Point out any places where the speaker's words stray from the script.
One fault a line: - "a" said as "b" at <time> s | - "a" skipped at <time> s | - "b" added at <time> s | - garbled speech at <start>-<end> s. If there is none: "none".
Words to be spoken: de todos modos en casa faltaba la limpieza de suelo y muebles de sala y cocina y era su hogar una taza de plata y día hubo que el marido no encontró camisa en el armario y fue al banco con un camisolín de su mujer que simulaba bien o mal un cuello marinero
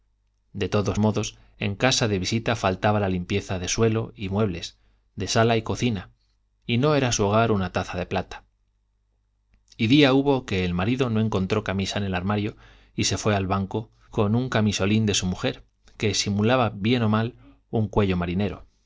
- "de visita" added at 2.1 s
- "no" added at 6.8 s
- "se" added at 13.0 s